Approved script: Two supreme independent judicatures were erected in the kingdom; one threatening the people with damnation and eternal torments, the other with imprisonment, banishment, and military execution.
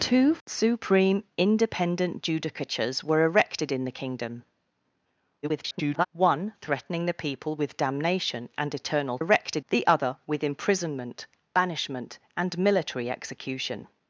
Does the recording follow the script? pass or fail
fail